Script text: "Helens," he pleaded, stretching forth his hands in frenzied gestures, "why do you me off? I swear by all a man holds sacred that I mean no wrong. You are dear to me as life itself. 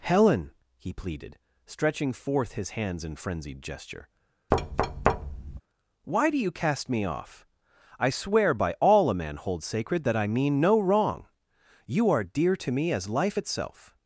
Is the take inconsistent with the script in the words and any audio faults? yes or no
yes